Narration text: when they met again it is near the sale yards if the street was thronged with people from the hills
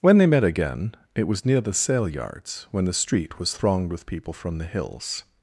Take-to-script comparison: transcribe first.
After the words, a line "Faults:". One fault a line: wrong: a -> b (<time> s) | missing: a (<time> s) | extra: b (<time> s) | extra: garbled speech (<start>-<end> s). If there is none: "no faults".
when they met again it was near the sale yards when the street was thronged with people from the hills
Faults:
wrong: is -> was (1.3 s)
wrong: if -> when (2.7 s)